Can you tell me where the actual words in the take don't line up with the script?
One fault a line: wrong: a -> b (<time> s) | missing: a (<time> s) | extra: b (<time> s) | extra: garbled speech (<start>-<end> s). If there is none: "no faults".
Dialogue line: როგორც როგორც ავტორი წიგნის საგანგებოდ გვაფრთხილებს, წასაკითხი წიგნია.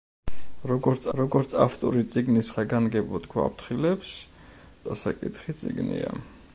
no faults